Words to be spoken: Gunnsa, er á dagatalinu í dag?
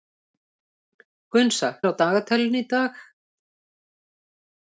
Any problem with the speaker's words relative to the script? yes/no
no